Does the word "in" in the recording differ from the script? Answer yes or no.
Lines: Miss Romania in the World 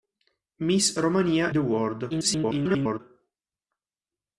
yes